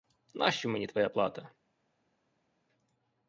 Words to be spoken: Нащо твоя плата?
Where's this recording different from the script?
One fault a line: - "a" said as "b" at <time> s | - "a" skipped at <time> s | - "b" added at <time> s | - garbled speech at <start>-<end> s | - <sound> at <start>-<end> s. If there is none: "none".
- "мені" added at 0.7 s